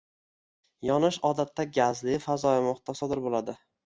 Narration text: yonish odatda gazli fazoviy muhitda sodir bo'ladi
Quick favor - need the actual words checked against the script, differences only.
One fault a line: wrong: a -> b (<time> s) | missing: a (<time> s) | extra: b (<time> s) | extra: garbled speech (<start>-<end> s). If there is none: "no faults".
no faults